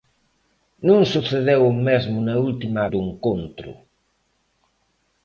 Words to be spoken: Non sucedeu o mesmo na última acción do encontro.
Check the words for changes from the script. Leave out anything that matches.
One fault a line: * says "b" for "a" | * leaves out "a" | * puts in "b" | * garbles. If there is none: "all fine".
* leaves out "acción"